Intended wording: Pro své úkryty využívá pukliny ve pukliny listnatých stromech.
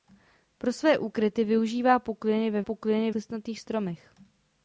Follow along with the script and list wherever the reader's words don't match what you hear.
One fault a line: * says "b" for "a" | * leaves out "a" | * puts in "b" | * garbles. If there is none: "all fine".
all fine